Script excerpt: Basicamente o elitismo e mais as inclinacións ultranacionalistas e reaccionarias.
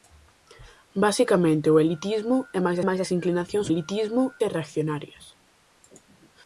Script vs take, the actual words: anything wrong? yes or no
yes